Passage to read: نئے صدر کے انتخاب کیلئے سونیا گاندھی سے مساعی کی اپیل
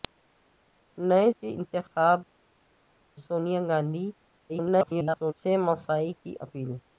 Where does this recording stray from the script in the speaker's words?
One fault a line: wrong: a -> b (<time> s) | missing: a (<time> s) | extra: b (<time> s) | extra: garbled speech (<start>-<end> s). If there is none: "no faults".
missing: صدر (1.3 s)
missing: کیلئے (2.2 s)
extra: garbled speech (4.5-5.3 s)